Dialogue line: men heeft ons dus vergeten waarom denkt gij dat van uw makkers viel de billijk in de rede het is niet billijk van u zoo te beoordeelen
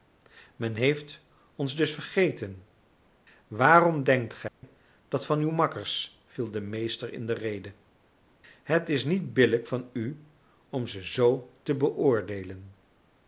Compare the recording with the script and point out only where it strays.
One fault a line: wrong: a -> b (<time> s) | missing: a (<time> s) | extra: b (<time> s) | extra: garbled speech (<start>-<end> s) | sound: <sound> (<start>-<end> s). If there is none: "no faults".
sound: dropout (4.5-4.6 s)
wrong: billijk -> meester (6.6 s)
extra: om ze (10.7 s)